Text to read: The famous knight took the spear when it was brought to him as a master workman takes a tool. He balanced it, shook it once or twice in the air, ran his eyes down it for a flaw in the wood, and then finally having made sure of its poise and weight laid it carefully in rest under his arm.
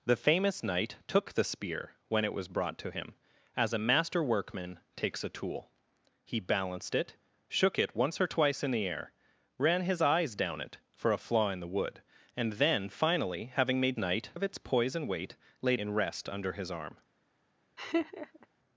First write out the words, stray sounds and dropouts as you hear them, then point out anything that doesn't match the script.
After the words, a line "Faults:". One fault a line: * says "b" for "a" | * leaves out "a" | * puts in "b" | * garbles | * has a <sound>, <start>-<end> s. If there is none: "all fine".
The famous knight took the spear when it was brought to him as a master workman takes a tool. He balanced it, shook it once or twice in the air, ran his eyes down it for a flaw in the wood, and then finally having made knight of its poise and weight laid in rest under his arm.
Faults:
* says "knight" for "sure"
* leaves out "it carefully"
* has a laugh, 17.8-18.5 s